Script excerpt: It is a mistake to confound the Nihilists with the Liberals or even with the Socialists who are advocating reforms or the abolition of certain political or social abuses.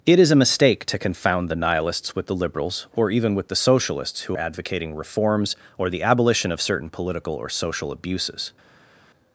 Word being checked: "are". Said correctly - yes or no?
no